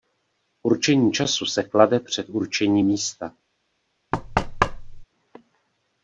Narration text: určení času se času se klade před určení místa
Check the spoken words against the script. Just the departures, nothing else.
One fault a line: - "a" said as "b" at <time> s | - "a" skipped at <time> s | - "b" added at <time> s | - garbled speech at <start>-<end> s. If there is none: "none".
- "času se" skipped at 1.6 s